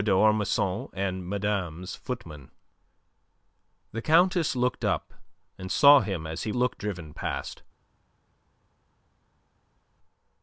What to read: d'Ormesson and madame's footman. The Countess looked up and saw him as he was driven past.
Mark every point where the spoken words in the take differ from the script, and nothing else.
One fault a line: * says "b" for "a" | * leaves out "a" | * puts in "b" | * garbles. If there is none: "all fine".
* says "looked" for "was"